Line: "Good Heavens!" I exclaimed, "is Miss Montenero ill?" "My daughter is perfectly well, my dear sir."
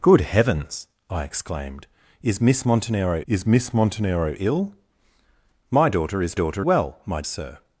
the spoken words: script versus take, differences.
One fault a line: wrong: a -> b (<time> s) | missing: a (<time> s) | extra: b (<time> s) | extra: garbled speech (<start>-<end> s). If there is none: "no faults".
extra: is Miss Montenero (3.3 s)
wrong: perfectly -> daughter (6.3 s)
missing: dear (7.2 s)